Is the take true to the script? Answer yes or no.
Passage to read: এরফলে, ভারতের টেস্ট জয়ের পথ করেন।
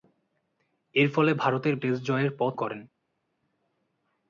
yes